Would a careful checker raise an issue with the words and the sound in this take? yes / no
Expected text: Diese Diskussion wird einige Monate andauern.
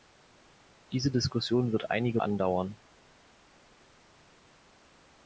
yes